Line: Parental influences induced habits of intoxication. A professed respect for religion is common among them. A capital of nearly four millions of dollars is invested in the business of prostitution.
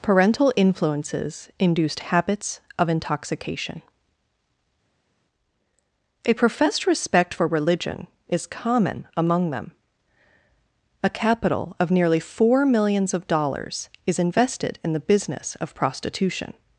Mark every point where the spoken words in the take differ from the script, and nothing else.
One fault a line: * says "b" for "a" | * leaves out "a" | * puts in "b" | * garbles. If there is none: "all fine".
all fine